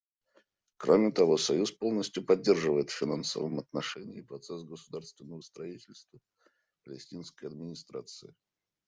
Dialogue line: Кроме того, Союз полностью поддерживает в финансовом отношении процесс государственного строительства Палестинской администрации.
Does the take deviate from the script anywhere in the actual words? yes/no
no